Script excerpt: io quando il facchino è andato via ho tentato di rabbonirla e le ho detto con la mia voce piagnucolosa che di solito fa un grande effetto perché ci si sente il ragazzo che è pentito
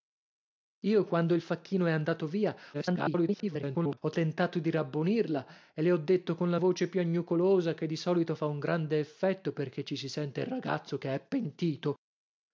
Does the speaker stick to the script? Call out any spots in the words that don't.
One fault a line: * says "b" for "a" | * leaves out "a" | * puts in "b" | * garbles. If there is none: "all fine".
* garbles
* leaves out "mia"